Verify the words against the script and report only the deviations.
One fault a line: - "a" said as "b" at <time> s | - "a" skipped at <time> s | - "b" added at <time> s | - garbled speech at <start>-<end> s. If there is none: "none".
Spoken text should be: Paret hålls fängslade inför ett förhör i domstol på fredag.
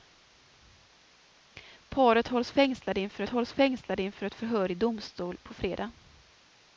- "hålls fängslade inför" added at 3.3 s